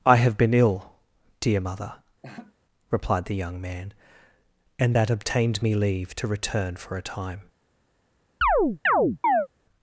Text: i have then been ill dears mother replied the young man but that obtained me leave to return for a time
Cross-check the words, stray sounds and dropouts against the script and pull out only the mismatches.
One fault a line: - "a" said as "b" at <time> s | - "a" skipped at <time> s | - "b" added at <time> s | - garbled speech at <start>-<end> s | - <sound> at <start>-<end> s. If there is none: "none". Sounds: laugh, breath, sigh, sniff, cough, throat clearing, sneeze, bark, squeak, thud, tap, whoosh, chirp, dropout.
- "then" skipped at 0.3 s
- "dears" said as "dear" at 1.4 s
- laugh at 2.2-2.5 s
- "but" said as "and" at 4.8 s
- chirp at 8.4-9.5 s